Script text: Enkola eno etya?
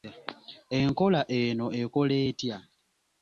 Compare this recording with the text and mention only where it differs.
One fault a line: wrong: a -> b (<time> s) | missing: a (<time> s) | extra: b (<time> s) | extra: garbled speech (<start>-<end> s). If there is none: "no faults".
extra: ekola (1.8 s)